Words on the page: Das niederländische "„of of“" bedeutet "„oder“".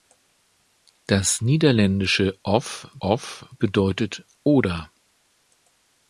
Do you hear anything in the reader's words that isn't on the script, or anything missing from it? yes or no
no